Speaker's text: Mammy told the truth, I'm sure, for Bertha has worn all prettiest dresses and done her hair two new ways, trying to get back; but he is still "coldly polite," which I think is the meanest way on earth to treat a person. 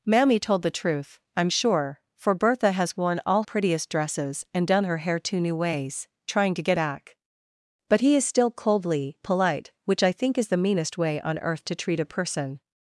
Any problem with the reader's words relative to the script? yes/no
no